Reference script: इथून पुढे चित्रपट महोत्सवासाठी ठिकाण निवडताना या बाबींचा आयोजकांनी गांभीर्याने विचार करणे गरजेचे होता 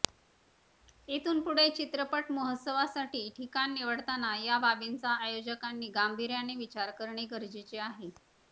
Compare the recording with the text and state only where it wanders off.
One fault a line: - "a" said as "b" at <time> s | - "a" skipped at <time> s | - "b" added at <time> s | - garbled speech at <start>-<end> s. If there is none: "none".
- "होता" said as "आहे" at 7.8 s